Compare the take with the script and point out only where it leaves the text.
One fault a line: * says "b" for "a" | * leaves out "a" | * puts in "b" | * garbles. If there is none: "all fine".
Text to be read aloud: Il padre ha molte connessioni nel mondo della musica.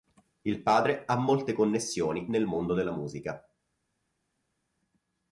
all fine